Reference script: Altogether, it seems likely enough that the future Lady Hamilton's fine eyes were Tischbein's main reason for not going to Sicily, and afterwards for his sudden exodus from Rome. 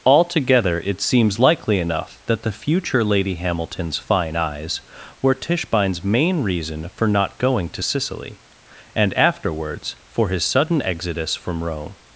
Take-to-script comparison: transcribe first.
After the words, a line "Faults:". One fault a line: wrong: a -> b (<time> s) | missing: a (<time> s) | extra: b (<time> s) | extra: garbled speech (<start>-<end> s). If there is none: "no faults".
Altogether, it seems likely enough that the future Lady Hamilton's fine eyes were Tischbein's main reason for not going to Sicily, and afterwards for his sudden exodus from Rome.
Faults:
no faults